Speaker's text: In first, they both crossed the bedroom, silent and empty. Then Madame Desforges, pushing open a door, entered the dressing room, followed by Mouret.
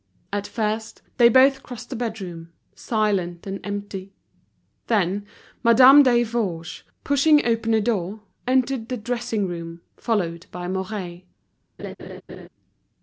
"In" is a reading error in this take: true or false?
true